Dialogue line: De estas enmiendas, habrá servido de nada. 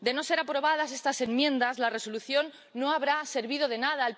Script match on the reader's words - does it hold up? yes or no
no